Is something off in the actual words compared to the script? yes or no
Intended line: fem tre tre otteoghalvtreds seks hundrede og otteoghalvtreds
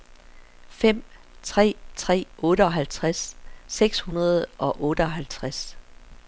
no